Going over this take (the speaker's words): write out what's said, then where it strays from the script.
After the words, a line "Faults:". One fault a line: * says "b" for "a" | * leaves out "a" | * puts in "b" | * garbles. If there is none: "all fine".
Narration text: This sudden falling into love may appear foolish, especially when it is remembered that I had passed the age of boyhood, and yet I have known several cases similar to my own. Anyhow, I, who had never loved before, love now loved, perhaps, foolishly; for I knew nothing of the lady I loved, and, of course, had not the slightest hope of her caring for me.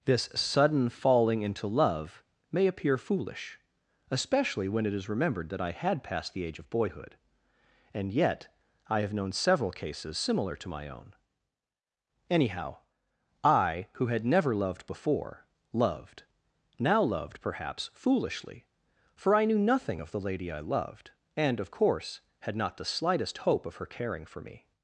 This sudden falling into love may appear foolish, especially when it is remembered that I had passed the age of boyhood, and yet I have known several cases similar to my own. Anyhow, I, who had never loved before, loved now loved, perhaps, foolishly; for I knew nothing of the lady I loved, and, of course, had not the slightest hope of her caring for me.
Faults:
* says "loved" for "love"